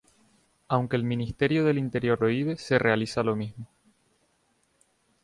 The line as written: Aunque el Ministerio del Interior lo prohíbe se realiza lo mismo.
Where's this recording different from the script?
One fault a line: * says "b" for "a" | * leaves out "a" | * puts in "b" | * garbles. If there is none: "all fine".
* leaves out "lo"